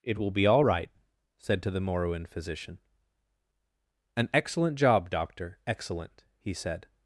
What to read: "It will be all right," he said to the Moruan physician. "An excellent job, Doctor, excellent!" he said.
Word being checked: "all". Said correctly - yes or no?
yes